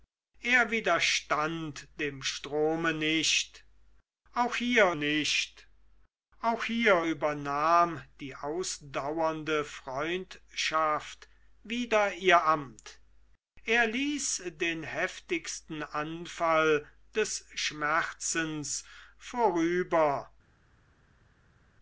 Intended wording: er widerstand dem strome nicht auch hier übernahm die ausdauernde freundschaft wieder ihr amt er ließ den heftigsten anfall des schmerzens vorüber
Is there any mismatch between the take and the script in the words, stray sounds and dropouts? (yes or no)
yes